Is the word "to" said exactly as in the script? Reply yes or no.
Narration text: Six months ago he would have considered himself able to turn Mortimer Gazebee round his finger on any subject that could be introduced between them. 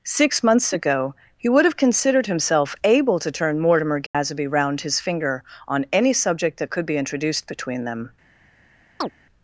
yes